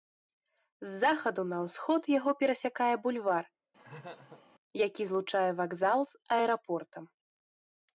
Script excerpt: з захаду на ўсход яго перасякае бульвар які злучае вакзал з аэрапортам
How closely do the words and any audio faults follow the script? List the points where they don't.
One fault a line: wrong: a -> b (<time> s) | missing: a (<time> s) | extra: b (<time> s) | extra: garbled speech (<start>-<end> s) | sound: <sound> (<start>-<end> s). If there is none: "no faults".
sound: laugh (3.8-4.4 s)